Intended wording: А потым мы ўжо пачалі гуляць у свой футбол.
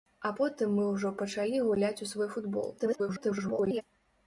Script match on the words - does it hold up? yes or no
no